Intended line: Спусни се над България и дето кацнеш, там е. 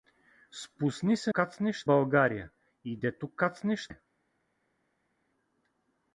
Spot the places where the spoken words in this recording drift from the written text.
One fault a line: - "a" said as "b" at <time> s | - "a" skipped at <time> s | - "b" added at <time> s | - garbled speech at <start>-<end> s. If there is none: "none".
- "над" said as "кацнеш" at 1.3 s
- "там" skipped at 3.9 s